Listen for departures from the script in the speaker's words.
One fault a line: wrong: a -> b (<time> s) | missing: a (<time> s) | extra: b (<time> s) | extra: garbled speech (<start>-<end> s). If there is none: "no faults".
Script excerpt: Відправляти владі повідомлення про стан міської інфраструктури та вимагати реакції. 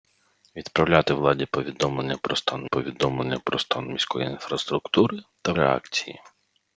extra: повідомлення про стан (2.6 s)
missing: вимагати (5.5 s)